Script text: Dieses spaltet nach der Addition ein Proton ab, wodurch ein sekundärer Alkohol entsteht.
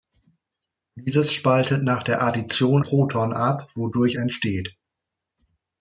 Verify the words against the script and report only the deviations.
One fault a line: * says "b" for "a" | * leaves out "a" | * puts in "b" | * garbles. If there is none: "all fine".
* leaves out "ein"
* leaves out "ein sekundärer Alkohol"